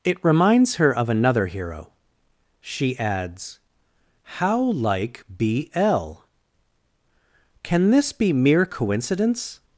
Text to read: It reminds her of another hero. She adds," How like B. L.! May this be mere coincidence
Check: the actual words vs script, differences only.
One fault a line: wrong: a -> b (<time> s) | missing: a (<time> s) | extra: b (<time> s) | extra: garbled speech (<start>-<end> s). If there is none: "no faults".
wrong: May -> Can (7.6 s)